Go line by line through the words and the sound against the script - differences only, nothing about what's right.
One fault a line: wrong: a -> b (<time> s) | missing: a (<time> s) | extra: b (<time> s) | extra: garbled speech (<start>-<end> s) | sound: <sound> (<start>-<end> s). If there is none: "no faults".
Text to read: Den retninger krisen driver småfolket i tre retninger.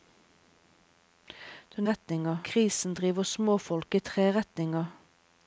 no faults